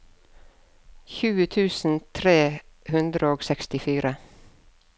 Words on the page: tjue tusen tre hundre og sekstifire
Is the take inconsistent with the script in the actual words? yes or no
no